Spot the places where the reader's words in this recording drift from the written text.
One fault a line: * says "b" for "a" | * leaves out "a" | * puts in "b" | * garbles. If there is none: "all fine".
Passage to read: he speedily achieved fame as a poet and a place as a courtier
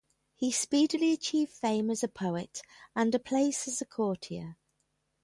all fine